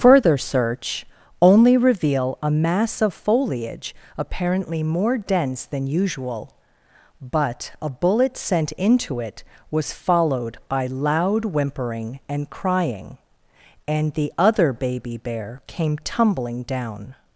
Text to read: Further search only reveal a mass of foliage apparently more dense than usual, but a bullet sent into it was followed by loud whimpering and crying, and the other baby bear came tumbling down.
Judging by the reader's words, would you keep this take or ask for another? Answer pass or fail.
pass